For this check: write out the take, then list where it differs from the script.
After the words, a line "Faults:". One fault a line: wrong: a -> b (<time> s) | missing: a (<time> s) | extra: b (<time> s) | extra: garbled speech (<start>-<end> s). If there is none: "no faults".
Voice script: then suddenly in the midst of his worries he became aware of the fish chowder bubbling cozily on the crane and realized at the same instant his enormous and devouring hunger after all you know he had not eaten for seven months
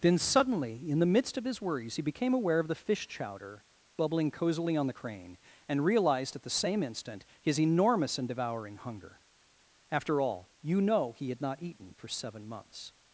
then suddenly in the midst of his worries he became aware of the fish chowder bubbling cozily on the crane and realized at the same instant his enormous and devouring hunger after all you know he had not eaten for seven months
Faults:
no faults